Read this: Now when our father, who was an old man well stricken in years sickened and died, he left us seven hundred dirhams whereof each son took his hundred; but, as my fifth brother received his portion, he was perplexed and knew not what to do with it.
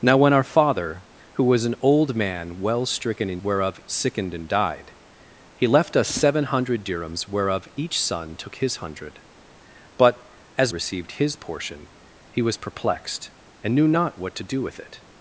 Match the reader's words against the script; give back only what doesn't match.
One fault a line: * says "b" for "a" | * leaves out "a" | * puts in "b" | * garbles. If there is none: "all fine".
* says "whereof" for "years"
* leaves out "my fifth brother"